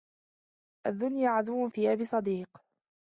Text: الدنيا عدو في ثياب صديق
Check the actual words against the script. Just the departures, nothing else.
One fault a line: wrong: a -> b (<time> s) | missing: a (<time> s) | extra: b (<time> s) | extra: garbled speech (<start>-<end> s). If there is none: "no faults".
missing: في (1.7 s)